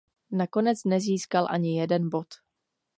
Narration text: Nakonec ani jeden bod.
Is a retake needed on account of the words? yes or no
yes